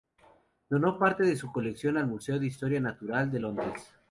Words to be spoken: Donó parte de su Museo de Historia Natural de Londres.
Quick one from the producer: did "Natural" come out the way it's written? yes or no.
yes